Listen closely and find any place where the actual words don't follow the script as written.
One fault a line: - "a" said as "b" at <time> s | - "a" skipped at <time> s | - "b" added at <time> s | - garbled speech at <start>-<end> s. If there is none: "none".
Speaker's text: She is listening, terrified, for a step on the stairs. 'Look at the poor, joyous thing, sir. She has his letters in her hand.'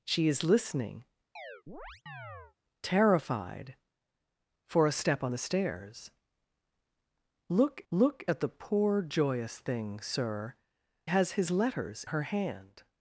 - "look" added at 7.9 s
- "She" skipped at 10.5 s
- "in" skipped at 12.0 s